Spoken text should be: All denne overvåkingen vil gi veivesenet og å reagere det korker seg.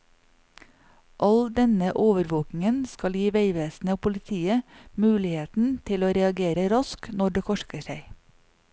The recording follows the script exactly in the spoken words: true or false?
false